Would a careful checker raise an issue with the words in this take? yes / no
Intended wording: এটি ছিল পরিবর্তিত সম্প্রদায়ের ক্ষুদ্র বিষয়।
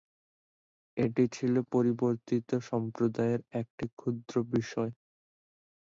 yes